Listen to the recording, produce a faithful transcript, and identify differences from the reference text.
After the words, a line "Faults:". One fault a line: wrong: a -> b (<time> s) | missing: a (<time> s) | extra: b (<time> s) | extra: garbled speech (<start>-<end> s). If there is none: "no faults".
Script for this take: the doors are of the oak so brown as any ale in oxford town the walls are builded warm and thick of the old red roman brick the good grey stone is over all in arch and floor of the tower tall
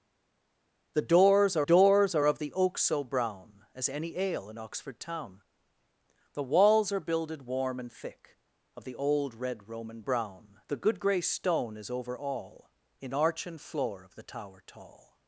the doors are doors are of the oak so brown as any ale in oxford town the walls are builded warm and thick of the old red roman brown the good grey stone is over all in arch and floor of the tower tall
Faults:
extra: doors are (1.6 s)
wrong: brick -> brown (10.0 s)